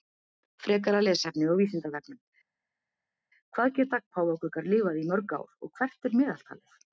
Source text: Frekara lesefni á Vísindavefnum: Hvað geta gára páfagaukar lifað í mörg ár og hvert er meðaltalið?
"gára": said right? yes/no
no